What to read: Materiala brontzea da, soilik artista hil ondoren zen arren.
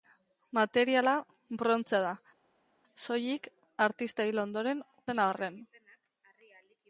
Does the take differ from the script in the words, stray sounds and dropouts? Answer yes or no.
no